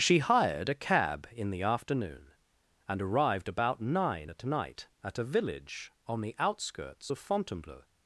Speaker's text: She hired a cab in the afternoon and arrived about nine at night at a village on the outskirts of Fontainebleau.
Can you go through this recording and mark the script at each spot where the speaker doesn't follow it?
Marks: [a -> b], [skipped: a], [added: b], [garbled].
She hired a cab in the afternoon and arrived about nine at night at a village on the outskirts of Fontainebleau.